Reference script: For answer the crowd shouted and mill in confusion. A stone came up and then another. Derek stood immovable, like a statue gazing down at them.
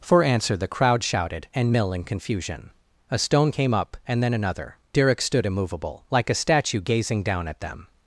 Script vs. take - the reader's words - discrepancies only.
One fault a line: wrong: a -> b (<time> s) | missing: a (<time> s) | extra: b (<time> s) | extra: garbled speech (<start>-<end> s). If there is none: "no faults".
no faults